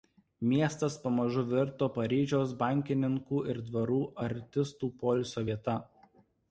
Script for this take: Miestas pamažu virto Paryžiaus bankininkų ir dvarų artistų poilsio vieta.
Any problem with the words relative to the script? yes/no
no